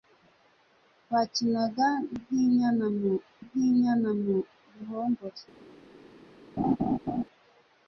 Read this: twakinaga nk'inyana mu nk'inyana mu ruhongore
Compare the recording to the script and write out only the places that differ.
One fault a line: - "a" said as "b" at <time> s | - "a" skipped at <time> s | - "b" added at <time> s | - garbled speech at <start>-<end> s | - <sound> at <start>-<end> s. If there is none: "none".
- laugh at 6.6-7.2 s